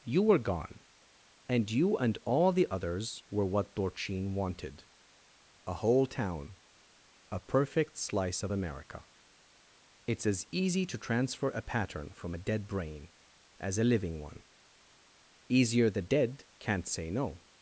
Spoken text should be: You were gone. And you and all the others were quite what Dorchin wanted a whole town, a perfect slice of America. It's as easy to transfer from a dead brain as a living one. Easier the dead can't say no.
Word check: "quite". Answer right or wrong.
wrong